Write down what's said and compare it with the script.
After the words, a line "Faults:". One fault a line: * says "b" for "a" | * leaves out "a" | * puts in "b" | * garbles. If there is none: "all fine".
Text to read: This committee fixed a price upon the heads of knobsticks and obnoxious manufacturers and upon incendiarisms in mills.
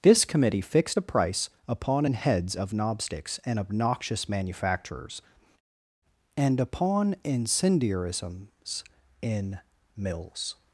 This committee fixed a price upon an heads of knobsticks and obnoxious manufacturers and upon incendiarisms in mills.
Faults:
* says "an" for "the"